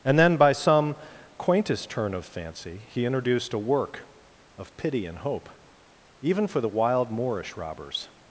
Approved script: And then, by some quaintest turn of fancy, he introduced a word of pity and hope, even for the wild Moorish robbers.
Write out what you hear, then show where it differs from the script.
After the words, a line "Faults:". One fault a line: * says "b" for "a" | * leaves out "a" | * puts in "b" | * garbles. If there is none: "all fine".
And then, by some quaintest turn of fancy, he introduced a work of pity and hope, even for the wild Moorish robbers.
Faults:
* says "work" for "word"